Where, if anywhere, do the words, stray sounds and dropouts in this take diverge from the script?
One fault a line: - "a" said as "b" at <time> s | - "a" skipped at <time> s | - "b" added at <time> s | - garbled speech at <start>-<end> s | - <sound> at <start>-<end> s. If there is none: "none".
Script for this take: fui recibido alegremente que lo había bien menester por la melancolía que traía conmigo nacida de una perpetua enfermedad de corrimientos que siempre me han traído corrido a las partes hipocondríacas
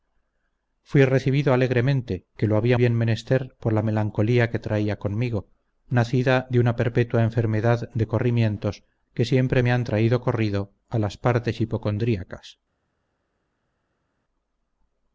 none